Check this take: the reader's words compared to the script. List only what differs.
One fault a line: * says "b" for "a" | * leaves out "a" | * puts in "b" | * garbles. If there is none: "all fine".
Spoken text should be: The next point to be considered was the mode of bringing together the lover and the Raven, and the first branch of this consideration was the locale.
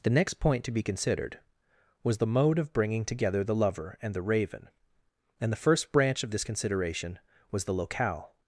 all fine